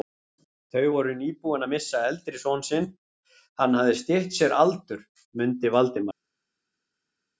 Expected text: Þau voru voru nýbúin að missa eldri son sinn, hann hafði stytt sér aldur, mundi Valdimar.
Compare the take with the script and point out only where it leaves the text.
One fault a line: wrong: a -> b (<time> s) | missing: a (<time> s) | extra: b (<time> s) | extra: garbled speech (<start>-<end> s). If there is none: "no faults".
missing: voru (1.2 s)